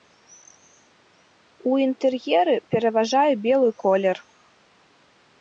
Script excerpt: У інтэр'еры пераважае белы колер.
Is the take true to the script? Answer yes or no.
yes